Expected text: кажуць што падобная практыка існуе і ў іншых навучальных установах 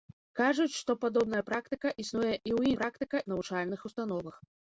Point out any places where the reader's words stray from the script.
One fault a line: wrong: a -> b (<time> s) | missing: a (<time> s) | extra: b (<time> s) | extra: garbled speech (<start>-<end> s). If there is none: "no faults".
wrong: іншых -> практыка (2.8 s)